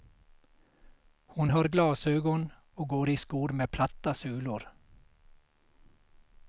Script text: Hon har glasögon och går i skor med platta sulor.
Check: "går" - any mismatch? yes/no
no